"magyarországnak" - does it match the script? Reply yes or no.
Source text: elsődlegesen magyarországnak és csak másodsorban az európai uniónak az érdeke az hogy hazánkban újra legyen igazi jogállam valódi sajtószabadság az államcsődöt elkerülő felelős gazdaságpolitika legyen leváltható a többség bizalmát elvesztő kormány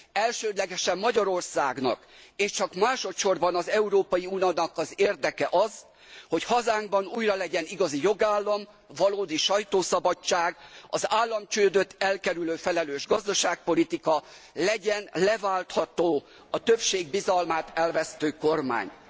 yes